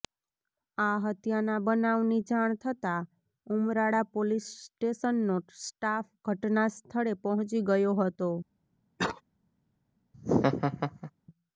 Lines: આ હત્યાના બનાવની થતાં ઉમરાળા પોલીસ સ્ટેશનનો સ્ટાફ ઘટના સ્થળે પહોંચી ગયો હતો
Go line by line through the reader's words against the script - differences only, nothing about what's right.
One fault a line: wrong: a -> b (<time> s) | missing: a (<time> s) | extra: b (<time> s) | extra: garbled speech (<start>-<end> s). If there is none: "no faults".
extra: જાણ (2.3 s)